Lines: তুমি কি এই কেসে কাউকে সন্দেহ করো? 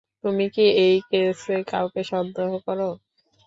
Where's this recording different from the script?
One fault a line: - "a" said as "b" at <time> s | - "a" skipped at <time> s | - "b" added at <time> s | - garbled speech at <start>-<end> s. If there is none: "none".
none